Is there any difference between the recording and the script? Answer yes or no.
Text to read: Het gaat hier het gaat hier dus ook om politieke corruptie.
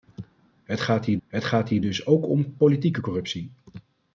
no